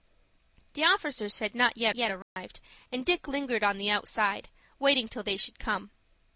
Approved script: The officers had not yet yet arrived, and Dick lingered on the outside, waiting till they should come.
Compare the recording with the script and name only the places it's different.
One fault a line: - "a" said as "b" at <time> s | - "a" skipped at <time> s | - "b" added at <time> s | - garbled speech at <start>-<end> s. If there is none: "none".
none